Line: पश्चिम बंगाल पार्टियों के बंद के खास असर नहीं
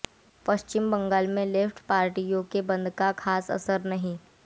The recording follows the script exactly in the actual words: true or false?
false